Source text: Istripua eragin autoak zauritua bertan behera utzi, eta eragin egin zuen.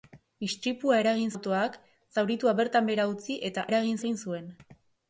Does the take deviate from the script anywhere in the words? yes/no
no